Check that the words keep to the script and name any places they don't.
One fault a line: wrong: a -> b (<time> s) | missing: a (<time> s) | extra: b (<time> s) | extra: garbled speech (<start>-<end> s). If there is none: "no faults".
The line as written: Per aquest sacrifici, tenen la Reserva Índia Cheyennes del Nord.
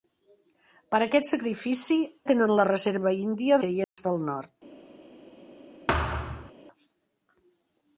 no faults